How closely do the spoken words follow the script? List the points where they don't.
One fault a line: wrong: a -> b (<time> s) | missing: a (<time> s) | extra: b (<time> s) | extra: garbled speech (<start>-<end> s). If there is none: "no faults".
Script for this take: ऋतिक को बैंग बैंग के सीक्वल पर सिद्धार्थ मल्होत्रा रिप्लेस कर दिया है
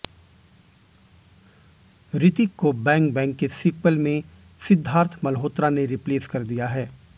wrong: पर -> में (4.0 s)
extra: ने (5.7 s)